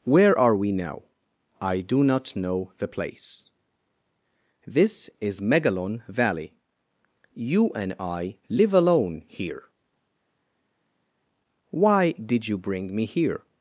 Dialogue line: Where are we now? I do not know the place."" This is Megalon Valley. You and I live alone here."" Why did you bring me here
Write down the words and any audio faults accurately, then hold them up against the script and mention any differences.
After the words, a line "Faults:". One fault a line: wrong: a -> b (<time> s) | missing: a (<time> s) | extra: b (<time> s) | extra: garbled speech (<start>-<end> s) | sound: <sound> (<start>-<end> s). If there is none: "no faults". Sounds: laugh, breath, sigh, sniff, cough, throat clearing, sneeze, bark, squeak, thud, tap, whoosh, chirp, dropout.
Where are we now? I do not know the place."" This is Megalon Valley. You and I live alone here."" Why did you bring me here
Faults:
no faults